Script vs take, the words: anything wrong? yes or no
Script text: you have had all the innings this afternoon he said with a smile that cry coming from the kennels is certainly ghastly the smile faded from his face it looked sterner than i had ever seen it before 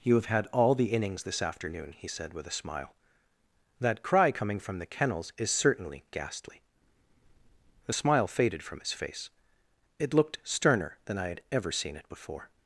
no